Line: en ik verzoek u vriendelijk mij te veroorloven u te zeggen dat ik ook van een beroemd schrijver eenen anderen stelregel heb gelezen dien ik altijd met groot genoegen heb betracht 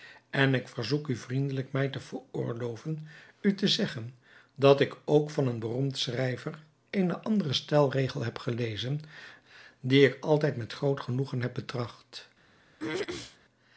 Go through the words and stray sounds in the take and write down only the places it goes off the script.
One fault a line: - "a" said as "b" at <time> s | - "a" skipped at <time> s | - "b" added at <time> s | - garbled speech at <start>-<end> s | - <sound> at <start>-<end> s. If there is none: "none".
- throat clearing at 12.8-13.4 s